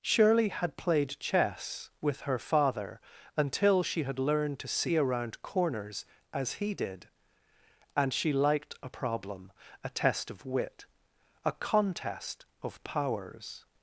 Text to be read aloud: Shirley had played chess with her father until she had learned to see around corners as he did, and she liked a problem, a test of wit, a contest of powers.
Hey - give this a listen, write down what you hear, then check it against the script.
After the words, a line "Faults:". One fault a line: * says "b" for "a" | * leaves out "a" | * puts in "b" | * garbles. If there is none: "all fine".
Shirley had played chess with her father until she had learned to see around corners as he did, and she liked a problem, a test of wit, a contest of powers.
Faults:
all fine